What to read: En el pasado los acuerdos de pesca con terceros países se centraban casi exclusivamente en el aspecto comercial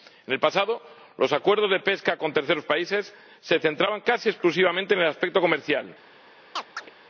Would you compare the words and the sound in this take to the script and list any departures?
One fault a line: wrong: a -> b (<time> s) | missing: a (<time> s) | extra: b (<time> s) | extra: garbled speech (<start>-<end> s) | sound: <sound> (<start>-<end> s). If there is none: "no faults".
sound: chirp (6.6-6.9 s)